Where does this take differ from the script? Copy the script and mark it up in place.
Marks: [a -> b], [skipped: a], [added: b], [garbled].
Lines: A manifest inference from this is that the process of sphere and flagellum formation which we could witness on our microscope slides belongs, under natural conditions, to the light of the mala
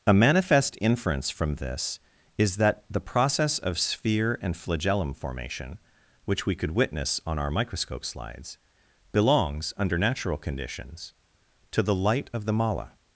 A manifest inference from this is that the process of sphere and flagellum formation which we could witness on our microscope slides belongs, under natural conditions, to the light of the mala